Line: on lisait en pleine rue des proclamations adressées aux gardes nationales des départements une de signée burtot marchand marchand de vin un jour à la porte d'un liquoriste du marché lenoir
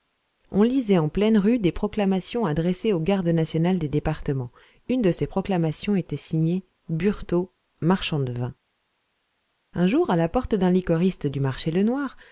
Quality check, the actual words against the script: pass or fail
fail